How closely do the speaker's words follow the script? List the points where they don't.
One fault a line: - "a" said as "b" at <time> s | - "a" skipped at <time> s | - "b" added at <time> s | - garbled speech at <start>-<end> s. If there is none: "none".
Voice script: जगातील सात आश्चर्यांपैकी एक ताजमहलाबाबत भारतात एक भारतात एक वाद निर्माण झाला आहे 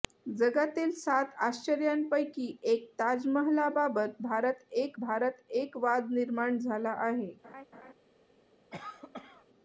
none